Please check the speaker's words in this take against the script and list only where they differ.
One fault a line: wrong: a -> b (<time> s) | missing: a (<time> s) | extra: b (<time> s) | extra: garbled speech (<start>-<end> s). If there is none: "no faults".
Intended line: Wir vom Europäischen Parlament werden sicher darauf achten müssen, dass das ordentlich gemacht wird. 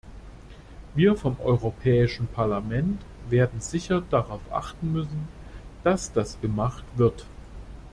missing: ordentlich (6.4 s)